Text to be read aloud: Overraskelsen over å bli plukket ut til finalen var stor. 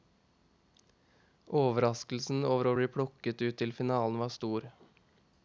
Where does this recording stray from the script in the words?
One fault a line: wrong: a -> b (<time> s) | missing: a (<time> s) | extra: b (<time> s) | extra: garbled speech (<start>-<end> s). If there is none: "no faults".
no faults